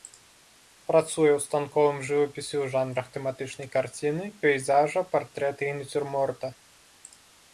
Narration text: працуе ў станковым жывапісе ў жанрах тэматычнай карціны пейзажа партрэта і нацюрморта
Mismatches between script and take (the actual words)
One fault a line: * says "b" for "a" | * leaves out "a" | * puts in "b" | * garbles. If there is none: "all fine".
all fine